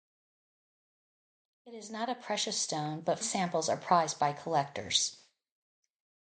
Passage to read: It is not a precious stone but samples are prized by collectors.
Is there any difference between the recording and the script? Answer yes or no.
no